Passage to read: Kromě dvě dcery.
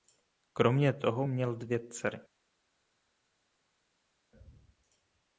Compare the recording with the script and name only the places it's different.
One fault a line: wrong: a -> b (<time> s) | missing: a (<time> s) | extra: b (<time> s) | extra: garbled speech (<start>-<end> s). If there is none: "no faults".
extra: toho měl (0.9 s)